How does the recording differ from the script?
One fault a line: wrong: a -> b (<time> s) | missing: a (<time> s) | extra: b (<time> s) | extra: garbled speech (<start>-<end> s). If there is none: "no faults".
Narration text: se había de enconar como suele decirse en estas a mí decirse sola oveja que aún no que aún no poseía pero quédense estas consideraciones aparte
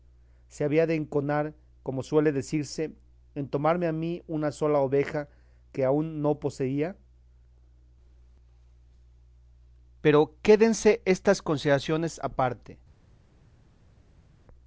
wrong: estas -> tomarme (3.5 s)
wrong: decirse -> una (4.3 s)
missing: que aún no (6.4 s)